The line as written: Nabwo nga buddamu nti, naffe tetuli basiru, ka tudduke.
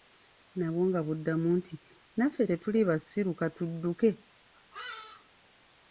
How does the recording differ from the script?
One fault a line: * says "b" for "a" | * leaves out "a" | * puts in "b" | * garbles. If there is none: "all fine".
all fine